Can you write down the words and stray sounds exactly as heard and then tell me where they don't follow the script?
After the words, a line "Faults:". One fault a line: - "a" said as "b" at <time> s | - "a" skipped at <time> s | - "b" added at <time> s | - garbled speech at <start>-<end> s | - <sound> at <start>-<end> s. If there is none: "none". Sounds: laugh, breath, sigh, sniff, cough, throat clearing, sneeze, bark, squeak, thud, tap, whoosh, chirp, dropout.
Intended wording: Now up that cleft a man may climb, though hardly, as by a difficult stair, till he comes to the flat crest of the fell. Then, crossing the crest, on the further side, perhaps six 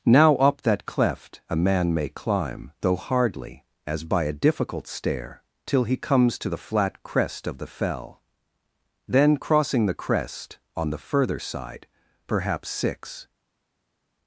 Now up that cleft a man may climb, though hardly, as by a difficult stair, till he comes to the flat crest of the fell. Then, crossing the crest, on the further side, perhaps six
Faults:
none